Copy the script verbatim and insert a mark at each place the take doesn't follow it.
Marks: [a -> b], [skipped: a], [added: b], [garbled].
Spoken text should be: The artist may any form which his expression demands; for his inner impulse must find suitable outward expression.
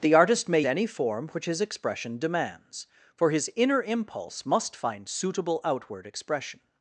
The artist may any form which his expression demands; for his inner impulse must find suitable outward expression.